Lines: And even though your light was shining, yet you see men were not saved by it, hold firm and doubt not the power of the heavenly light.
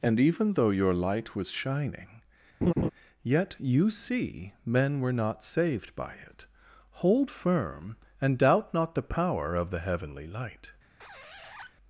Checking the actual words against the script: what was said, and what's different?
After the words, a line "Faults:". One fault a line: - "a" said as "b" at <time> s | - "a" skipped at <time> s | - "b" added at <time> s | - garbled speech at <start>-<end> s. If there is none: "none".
And even though your light was shining, yet you see men were not saved by it, hold firm and doubt not the power of the heavenly light.
Faults:
none